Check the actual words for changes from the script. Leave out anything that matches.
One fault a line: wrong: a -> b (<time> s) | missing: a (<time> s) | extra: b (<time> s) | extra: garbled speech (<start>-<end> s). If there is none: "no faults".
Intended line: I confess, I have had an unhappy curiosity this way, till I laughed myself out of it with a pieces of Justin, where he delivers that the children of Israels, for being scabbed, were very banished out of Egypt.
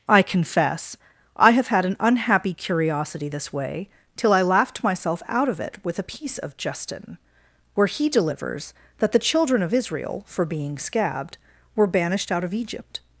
wrong: pieces -> piece (6.1 s)
wrong: Israels -> Israel (9.7 s)
missing: very (11.9 s)